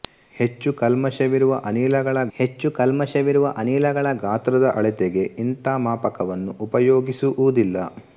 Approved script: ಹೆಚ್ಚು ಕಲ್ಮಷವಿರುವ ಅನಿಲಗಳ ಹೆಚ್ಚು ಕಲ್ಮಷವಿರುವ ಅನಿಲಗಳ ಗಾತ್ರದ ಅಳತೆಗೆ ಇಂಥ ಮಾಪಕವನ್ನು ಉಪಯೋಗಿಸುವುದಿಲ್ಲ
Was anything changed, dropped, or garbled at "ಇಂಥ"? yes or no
no